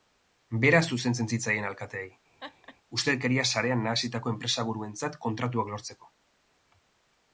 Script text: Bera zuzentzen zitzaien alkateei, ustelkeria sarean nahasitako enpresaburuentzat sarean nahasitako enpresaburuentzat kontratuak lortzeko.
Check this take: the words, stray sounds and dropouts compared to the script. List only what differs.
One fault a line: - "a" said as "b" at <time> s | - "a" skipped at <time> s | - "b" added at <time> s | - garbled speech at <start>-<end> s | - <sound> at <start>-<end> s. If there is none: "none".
- laugh at 2.4-2.8 s
- "sarean nahasitako enpresaburuentzat" skipped at 5.2 s